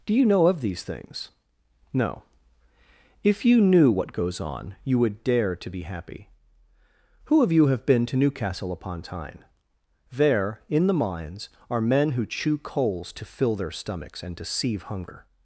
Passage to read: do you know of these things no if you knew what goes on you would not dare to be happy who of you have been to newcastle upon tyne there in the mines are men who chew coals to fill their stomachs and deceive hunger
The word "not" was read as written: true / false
false